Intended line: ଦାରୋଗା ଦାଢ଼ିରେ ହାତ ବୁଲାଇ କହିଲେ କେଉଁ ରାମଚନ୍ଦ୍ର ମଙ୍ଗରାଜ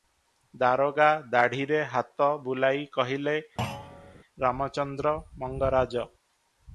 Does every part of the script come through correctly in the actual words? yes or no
no